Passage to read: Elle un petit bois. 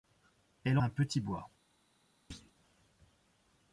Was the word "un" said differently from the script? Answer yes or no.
no